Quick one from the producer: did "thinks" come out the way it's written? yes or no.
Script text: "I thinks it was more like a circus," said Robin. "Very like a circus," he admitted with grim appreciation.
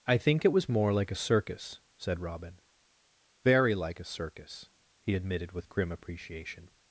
no